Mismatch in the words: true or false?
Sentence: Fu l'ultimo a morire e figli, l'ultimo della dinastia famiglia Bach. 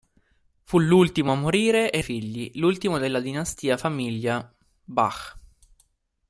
false